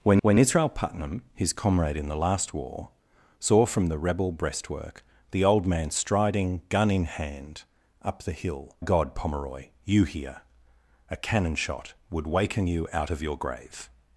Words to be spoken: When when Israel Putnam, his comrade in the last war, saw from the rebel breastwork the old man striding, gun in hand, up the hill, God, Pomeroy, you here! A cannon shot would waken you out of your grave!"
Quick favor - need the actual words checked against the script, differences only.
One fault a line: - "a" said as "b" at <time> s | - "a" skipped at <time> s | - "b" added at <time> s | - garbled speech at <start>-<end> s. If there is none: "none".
none